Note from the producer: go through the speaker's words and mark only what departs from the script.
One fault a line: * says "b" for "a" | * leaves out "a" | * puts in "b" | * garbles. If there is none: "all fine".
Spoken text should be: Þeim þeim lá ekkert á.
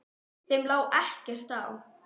* leaves out "þeim"